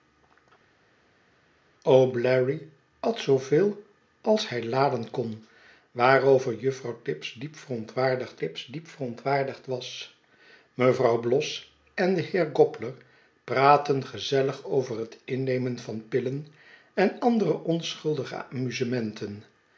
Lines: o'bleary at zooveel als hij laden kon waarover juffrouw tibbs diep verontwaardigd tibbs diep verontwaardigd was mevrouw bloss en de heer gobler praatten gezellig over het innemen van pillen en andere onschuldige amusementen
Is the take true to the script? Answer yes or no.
yes